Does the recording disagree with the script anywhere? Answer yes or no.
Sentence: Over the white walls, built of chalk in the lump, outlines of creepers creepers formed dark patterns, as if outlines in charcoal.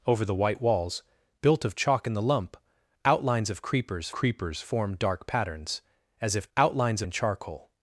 no